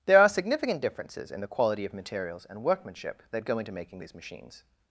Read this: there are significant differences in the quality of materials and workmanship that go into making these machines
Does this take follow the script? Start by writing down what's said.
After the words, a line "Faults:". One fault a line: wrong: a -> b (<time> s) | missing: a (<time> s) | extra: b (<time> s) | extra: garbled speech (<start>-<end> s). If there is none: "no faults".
there are significant differences in the quality of materials and workmanship that go into making these machines
Faults:
no faults